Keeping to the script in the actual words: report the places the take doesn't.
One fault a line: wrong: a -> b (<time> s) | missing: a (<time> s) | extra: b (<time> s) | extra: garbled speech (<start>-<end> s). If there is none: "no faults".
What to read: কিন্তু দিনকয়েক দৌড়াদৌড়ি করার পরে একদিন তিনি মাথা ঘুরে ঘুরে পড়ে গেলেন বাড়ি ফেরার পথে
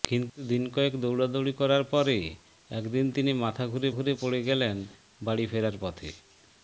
no faults